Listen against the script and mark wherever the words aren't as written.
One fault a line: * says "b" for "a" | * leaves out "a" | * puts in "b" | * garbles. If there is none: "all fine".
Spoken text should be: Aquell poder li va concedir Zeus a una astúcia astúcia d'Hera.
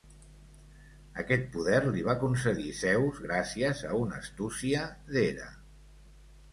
* says "Aquest" for "Aquell"
* puts in "gràcies"
* leaves out "astúcia"